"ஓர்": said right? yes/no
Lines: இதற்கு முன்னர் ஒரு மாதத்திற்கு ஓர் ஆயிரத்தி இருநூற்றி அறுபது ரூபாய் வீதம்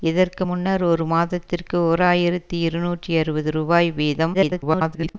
yes